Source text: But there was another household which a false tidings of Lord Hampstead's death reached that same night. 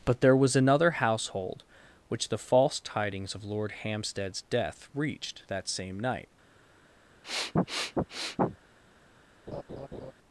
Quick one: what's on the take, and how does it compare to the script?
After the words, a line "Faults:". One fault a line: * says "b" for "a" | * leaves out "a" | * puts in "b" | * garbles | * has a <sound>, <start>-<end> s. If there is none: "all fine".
But there was another household which the false tidings of Lord Hampstead's death reached that same night.
Faults:
* says "the" for "a"
* has a sniff, 7.2-8.6 s
* has a laugh, 9.5-10.1 s